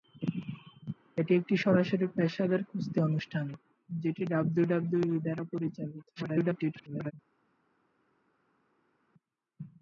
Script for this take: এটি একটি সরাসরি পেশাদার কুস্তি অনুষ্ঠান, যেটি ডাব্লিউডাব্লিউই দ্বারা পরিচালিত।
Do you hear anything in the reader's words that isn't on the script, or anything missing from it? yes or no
yes